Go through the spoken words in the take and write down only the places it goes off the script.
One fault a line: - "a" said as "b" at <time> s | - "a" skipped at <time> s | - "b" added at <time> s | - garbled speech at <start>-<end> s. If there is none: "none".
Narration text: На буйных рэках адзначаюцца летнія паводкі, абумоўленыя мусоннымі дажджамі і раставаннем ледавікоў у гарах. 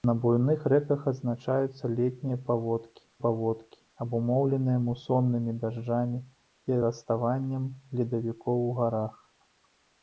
- "паводкі" added at 3.2 s